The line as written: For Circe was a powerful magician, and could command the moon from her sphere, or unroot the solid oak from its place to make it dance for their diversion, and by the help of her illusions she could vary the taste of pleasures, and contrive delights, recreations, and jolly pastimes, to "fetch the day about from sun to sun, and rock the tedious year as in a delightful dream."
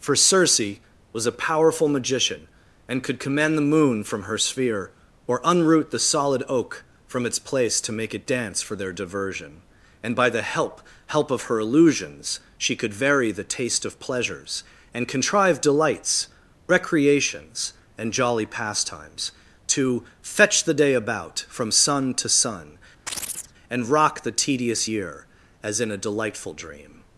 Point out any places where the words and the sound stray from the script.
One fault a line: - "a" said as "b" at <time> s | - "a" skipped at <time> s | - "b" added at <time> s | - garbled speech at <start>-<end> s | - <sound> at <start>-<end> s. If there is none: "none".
- "help" added at 11.1 s
- chirp at 23.1-23.5 s